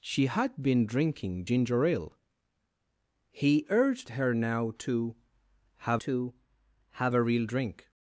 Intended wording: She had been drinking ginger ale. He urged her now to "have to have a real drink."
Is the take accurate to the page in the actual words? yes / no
yes